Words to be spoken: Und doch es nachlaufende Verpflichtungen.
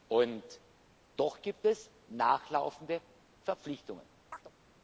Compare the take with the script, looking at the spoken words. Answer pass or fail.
fail